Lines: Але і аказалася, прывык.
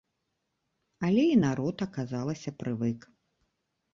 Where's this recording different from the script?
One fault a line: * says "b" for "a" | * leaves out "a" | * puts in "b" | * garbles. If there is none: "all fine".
* puts in "народ"